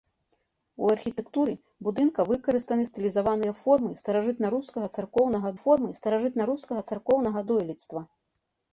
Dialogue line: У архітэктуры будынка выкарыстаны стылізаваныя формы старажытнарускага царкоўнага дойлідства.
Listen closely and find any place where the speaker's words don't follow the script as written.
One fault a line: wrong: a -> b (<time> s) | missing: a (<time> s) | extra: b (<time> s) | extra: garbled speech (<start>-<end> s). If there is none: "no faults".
extra: формы старажытнарускага царкоўнага (5.6 s)